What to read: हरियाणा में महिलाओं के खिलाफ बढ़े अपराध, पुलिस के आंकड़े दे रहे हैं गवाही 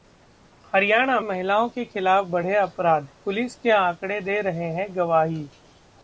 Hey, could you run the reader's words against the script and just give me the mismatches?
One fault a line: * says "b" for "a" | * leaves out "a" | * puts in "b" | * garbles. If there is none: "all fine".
* leaves out "में"